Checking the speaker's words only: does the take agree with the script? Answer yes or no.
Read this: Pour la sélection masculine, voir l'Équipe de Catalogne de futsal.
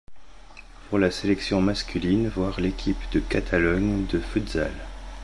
yes